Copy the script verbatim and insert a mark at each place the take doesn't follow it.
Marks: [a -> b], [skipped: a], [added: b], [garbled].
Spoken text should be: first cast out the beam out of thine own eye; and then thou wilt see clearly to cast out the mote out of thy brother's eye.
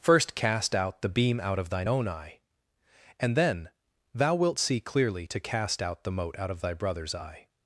first cast out the beam out of thine own eye; and then thou wilt see clearly to cast out the mote out of thy brother's eye.